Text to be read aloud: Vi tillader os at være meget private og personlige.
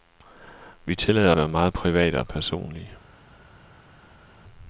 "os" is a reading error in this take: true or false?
true